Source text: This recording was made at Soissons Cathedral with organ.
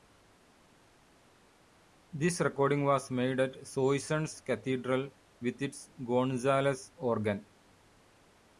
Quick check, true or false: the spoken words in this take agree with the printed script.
false